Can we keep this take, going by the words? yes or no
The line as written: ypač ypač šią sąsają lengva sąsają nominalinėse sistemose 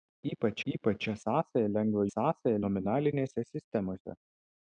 yes